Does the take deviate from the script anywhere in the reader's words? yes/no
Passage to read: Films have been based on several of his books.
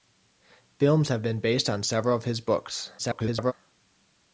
yes